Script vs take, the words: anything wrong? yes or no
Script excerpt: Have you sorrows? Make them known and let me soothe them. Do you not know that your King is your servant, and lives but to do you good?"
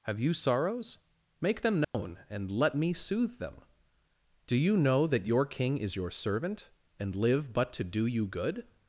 yes